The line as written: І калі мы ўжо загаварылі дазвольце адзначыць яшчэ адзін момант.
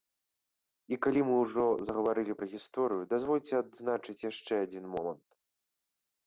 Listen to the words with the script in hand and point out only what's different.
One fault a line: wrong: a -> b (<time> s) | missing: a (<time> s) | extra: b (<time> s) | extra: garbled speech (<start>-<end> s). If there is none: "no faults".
extra: пра гісторыю (2.4 s)